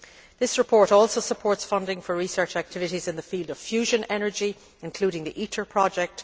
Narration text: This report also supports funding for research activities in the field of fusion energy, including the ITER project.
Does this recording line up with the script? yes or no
yes